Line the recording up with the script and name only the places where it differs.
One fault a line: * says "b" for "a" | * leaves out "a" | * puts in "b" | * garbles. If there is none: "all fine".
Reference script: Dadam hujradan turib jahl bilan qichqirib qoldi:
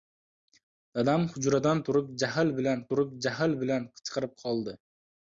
* puts in "turib jahl bilan"